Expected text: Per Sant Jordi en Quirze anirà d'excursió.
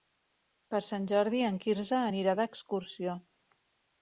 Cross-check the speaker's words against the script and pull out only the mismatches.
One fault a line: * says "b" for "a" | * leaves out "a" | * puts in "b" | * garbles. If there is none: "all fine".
all fine